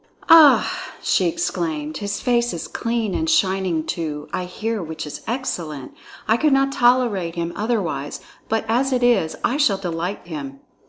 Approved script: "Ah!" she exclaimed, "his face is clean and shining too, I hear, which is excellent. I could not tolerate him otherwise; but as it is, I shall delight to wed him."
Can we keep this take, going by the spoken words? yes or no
no